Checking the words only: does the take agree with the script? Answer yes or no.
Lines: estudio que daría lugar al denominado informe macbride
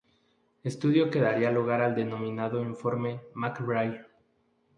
yes